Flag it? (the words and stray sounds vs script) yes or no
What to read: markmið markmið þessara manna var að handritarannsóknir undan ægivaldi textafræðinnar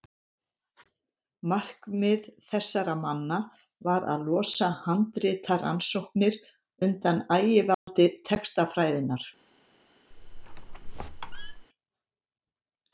yes